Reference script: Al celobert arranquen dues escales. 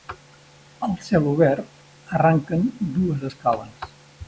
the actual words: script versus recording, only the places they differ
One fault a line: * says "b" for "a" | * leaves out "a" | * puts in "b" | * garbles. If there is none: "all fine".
all fine